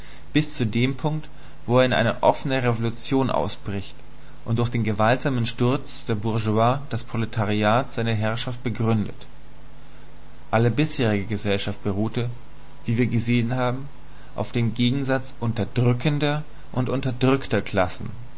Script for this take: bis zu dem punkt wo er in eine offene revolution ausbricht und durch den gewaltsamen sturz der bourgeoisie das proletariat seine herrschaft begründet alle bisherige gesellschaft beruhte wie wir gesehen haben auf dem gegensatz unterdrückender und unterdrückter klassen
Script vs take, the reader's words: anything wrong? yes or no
no